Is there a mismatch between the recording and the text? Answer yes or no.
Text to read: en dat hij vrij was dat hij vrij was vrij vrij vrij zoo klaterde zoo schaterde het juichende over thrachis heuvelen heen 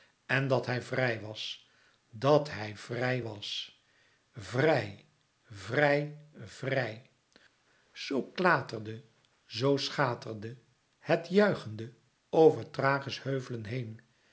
no